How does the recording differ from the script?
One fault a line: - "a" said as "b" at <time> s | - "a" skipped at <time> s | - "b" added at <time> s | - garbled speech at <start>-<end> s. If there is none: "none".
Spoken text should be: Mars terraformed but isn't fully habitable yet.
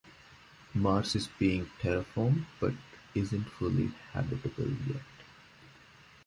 - "is being" added at 1.1 s